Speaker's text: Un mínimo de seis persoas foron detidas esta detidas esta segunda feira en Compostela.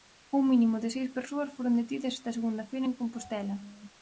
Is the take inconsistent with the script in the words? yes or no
yes